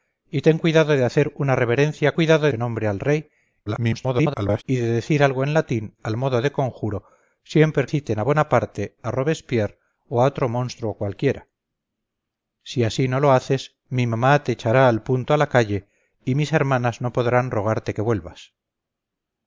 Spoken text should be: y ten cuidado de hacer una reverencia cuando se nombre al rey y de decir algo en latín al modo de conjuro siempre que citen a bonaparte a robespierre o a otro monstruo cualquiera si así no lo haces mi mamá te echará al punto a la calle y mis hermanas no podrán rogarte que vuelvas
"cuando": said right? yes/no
no